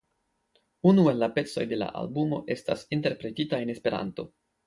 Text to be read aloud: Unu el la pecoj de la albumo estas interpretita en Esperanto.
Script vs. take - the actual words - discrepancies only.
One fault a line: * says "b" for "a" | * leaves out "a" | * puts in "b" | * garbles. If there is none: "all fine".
all fine